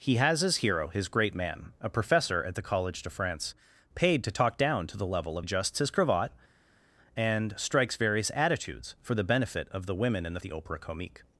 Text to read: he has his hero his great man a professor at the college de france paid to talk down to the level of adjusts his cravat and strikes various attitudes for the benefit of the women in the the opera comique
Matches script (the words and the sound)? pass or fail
pass